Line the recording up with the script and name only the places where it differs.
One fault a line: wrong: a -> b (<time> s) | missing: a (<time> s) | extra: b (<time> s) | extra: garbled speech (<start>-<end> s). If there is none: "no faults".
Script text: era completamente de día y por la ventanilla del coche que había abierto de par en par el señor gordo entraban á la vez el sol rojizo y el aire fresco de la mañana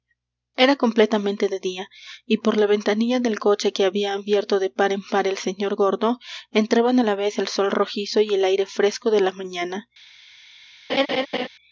no faults